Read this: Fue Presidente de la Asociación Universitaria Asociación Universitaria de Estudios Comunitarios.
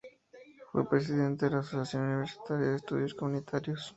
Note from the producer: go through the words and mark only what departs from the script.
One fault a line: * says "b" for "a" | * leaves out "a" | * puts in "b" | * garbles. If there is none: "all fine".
* leaves out "Asociación Universitaria"